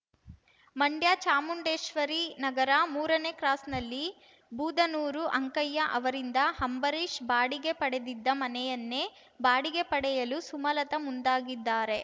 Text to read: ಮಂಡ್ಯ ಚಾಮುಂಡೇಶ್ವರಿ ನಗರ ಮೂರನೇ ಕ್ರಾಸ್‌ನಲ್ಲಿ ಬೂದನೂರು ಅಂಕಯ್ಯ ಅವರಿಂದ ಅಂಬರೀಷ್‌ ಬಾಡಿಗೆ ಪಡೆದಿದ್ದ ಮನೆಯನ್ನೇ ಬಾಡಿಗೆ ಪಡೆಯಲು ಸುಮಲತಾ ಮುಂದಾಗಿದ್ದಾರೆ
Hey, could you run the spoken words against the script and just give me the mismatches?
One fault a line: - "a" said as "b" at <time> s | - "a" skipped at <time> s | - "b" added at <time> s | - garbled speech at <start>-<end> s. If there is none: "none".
none